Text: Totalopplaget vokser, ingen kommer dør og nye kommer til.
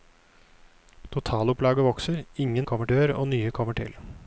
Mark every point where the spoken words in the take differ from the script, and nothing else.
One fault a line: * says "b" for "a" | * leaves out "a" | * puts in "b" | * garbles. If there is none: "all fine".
all fine